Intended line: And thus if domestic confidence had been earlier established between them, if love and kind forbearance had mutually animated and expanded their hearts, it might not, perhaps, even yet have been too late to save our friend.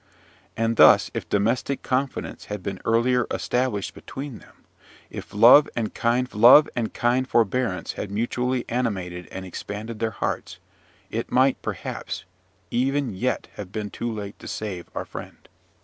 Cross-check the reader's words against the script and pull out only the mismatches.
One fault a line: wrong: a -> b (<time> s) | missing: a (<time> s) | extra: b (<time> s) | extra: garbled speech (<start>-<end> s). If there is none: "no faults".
extra: love and kind (6.3 s)
missing: not (11.6 s)